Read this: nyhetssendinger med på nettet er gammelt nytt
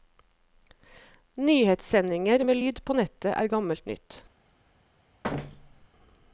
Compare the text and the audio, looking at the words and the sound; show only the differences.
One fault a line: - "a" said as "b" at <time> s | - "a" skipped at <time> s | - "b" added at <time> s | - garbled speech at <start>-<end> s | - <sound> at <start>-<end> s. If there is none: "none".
- "lyd" added at 2.6 s
- thud at 5.2-5.9 s